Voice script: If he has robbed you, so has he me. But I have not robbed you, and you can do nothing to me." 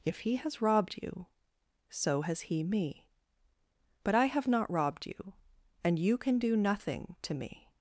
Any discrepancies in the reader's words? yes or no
no